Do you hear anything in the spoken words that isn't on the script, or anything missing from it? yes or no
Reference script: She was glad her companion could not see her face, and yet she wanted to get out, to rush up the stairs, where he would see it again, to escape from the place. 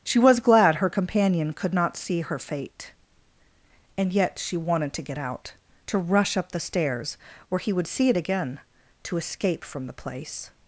yes